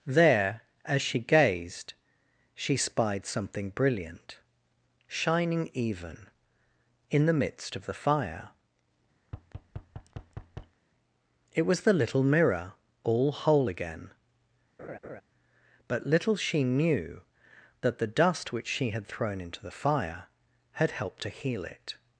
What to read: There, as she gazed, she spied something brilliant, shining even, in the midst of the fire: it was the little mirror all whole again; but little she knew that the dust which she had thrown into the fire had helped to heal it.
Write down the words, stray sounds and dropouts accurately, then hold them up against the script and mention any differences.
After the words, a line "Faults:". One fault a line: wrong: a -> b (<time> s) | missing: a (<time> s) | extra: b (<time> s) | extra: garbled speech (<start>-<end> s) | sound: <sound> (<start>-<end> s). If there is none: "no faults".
There, as she gazed, she spied something brilliant, shining even, in the midst of the fire: it was the little mirror all whole again; but little she knew that the dust which she had thrown into the fire had helped to heal it.
Faults:
sound: thud (9.2-10.8 s)
sound: laugh (14.8-15.2 s)